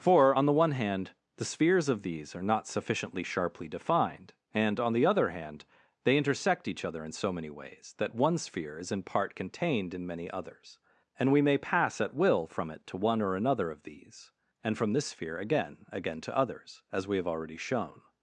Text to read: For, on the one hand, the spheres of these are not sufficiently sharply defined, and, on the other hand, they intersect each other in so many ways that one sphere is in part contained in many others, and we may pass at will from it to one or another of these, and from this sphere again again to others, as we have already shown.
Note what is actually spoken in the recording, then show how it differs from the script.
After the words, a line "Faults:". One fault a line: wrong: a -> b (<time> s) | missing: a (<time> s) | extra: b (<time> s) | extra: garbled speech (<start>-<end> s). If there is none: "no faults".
For, on the one hand, the spheres of these are not sufficiently sharply defined, and, on the other hand, they intersect each other in so many ways that one sphere is in part contained in many others, and we may pass at will from it to one or another of these, and from this sphere again again to others, as we have already shown.
Faults:
no faults